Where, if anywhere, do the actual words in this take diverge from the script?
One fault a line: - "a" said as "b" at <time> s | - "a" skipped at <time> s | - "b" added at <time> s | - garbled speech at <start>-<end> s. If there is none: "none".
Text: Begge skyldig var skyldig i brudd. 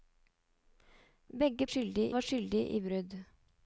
none